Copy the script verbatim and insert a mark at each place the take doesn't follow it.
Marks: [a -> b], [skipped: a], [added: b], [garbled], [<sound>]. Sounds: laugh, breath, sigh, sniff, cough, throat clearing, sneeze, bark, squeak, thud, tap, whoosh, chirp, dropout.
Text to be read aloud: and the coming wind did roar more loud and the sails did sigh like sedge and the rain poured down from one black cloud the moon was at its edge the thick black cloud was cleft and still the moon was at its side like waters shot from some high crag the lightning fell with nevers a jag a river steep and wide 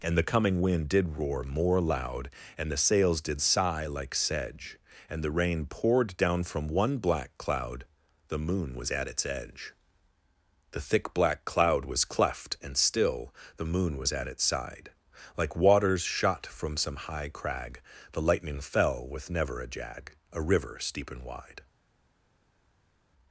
and the coming wind did roar more loud and the sails did sigh like sedge and the rain poured down from one black cloud the moon was at its edge the thick black cloud was cleft and still the moon was at its side like waters shot from some high crag the lightning fell with [nevers -> never] a jag a river steep and wide